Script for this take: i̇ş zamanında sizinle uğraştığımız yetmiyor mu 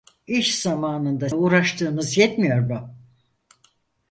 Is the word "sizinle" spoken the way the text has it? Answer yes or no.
no